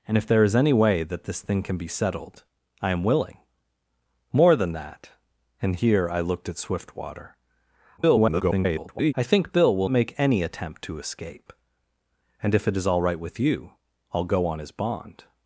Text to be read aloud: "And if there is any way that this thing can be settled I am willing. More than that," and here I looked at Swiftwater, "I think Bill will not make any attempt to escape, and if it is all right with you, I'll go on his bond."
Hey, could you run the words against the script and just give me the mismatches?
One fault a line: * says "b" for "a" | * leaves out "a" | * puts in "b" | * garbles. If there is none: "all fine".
* garbles
* leaves out "not"